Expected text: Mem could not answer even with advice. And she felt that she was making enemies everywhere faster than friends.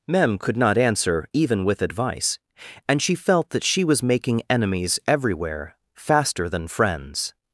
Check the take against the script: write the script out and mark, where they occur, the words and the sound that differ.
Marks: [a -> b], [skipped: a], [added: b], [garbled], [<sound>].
Mem could not answer even with advice. And she felt that she was making enemies everywhere faster than friends.